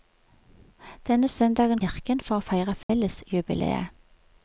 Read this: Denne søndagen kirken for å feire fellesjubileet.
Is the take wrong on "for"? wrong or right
right